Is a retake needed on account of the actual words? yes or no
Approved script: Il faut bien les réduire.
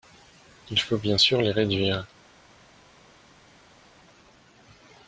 yes